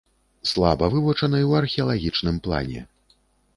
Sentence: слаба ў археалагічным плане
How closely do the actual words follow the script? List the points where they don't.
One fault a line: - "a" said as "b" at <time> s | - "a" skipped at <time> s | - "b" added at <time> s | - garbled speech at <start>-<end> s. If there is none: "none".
- "вывучаны" added at 0.9 s